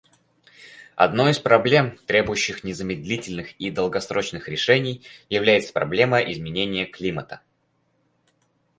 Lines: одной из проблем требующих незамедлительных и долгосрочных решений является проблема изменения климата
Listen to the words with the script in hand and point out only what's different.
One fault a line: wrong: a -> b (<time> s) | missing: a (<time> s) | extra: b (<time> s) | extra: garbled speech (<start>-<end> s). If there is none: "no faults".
no faults